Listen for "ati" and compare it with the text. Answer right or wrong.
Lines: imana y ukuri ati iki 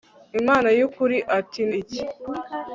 right